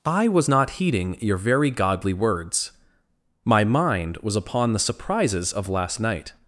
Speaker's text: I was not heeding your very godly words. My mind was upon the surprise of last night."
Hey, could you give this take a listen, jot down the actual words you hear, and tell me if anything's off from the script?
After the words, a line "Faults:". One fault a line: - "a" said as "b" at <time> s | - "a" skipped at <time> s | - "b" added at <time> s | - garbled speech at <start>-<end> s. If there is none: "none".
I was not heeding your very godly words. My mind was upon the surprises of last night."
Faults:
- "surprise" said as "surprises" at 4.8 s